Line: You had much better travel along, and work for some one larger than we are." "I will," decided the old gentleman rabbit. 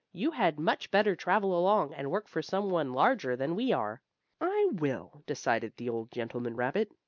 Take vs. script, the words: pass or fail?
pass